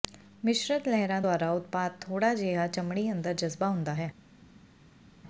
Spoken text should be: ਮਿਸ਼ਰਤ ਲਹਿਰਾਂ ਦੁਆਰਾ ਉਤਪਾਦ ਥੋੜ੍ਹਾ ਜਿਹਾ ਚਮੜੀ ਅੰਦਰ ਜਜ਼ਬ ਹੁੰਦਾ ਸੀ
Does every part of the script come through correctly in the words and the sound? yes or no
no